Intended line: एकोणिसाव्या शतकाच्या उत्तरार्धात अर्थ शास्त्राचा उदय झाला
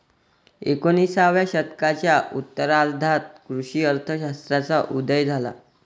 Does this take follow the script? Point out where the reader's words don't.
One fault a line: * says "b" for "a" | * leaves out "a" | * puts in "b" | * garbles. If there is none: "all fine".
* puts in "कृषी"